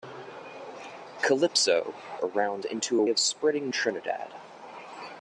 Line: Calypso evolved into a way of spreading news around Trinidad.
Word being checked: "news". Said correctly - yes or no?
no